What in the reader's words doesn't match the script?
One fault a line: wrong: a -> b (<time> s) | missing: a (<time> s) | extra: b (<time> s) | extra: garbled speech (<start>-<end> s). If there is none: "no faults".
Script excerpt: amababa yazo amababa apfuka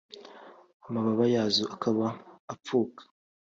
wrong: amababa -> akaba (1.7 s)